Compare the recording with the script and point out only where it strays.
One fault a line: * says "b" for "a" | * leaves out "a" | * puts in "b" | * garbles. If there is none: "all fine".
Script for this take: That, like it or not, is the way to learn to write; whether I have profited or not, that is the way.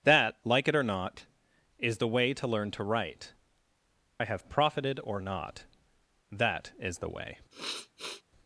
* leaves out "whether"